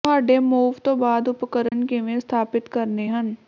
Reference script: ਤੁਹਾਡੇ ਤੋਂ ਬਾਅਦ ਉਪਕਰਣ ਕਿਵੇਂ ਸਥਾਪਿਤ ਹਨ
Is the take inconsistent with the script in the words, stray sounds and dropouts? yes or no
yes